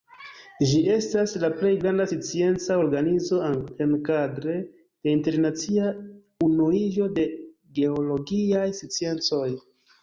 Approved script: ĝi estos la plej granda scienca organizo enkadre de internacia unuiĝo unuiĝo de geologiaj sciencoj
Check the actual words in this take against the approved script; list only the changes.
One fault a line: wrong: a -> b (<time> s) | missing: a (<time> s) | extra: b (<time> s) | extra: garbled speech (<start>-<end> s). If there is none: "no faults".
wrong: estos -> estas (0.9 s)
missing: unuiĝo (7.1 s)